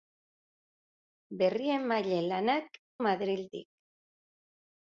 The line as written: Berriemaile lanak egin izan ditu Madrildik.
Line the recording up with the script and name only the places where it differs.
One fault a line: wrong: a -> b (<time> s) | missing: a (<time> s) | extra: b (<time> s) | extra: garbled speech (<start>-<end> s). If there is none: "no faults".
missing: egin izan ditu (2.8 s)